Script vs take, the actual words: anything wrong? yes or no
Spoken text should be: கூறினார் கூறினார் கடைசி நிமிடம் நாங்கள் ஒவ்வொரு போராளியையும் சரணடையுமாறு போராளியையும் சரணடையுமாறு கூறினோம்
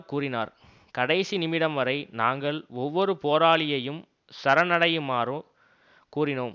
yes